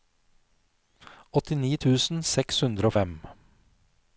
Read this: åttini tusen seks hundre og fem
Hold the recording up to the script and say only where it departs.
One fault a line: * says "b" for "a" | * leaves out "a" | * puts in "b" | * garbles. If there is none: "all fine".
all fine